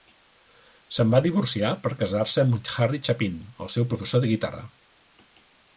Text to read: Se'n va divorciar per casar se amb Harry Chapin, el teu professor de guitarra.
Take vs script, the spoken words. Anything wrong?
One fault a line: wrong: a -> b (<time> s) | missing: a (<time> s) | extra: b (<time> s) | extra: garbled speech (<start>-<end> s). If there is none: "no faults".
wrong: teu -> seu (3.8 s)